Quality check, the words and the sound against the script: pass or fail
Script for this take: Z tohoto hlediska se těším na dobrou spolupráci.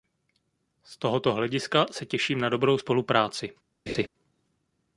fail